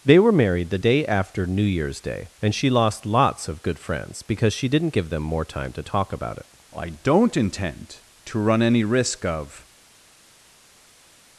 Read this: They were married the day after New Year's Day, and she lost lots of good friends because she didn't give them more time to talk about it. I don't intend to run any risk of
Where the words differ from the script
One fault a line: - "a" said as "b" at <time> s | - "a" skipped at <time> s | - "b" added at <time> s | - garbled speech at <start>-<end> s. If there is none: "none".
none